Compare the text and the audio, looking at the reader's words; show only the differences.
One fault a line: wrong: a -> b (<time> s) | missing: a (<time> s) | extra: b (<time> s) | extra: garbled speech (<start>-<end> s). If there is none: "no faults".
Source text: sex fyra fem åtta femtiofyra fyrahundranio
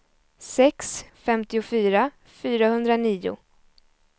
missing: fyra fem åtta (1.1 s)